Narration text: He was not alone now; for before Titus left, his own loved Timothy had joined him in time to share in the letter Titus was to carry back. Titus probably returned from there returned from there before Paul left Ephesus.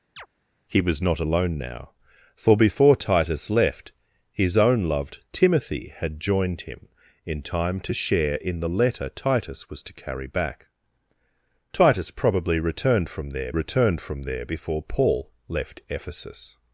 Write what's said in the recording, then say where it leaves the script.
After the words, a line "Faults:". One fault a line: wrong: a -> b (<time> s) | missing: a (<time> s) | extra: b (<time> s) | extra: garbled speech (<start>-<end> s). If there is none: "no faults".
He was not alone now; for before Titus left, his own loved Timothy had joined him in time to share in the letter Titus was to carry back. Titus probably returned from there returned from there before Paul left Ephesus.
Faults:
no faults